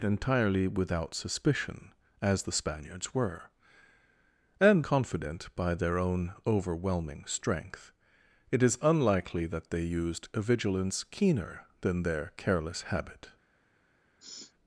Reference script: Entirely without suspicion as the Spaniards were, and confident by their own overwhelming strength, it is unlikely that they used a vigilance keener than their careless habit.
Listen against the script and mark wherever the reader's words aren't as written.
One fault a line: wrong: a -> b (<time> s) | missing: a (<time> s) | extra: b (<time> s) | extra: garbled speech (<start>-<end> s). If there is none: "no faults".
no faults